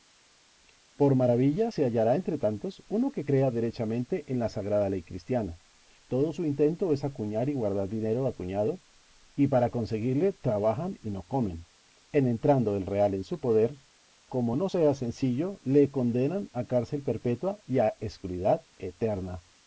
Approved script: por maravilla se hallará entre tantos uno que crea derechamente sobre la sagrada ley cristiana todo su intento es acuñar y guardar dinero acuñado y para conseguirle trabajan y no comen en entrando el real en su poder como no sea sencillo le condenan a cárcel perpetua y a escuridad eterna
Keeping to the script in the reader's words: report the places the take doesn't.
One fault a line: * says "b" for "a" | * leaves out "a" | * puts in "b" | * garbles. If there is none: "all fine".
* says "en" for "sobre"